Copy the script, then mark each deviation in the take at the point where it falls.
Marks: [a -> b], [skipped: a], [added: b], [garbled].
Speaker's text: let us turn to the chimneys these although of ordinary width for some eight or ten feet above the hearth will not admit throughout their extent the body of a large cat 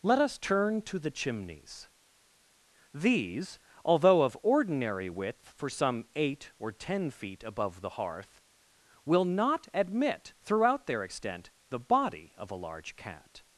let us turn to the chimneys these although of ordinary width for some eight or ten feet above the hearth will not admit throughout their extent the body of a large cat